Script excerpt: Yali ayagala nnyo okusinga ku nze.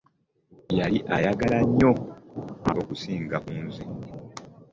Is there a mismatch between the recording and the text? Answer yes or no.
no